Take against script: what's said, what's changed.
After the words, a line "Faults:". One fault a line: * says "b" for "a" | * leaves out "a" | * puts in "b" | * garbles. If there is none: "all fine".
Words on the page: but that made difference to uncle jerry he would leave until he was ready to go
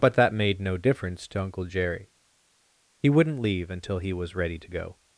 but that made no difference to uncle jerry he wouldn't leave until he was ready to go
Faults:
* puts in "no"
* says "wouldn't" for "would"